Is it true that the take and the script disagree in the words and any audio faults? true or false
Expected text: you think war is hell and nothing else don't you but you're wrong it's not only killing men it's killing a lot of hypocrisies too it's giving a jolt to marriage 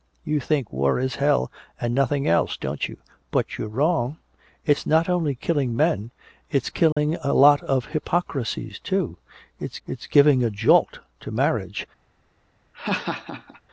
true